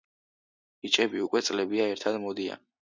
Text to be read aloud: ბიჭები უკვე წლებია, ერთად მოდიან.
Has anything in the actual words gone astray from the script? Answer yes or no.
no